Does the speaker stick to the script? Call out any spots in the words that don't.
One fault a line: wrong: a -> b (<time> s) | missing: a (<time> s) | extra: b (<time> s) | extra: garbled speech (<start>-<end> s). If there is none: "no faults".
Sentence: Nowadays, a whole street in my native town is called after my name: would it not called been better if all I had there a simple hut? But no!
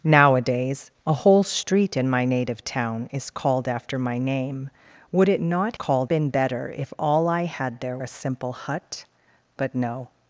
no faults